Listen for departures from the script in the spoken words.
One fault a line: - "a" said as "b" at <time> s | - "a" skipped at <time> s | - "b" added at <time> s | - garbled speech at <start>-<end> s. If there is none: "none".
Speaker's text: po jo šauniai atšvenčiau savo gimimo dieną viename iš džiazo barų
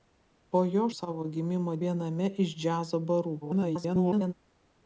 - "šauniai atšvenčiau" skipped at 0.8 s
- "dieną" skipped at 1.7 s
- garbled speech at 3.4-4.3 s